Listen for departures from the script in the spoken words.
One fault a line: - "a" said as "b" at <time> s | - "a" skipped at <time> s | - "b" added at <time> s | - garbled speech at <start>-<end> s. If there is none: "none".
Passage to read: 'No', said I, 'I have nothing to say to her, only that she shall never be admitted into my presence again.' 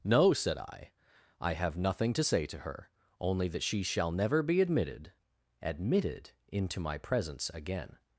- "admitted" added at 5.6 s